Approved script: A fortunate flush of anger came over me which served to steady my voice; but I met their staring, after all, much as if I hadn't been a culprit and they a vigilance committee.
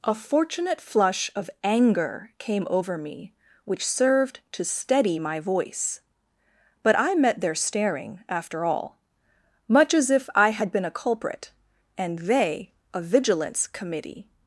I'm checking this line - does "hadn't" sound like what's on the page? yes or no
no